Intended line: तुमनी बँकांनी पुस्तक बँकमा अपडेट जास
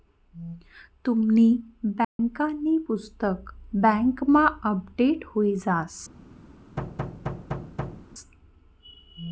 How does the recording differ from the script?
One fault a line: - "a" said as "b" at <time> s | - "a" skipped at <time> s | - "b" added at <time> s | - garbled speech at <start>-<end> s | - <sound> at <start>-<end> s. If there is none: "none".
- dropout at 2.0-2.2 s
- "हुई" added at 5.2 s
- thud at 6.8-8.1 s